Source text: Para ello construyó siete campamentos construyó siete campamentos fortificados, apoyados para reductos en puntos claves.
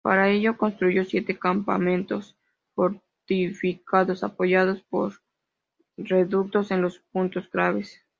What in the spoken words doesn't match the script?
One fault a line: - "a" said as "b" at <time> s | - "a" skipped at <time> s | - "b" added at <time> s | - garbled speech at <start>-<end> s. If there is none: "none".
- "construyó siete campamentos" skipped at 2.4 s
- "para" said as "por" at 4.9 s
- "los" added at 6.8 s